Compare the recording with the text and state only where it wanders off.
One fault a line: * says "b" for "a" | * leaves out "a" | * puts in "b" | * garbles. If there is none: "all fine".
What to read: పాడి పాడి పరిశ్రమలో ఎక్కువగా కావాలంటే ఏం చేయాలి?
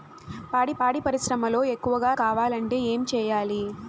all fine